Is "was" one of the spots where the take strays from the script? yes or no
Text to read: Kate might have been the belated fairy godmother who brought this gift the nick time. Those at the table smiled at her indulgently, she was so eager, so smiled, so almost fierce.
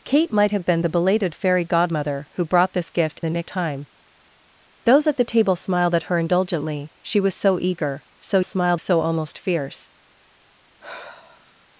no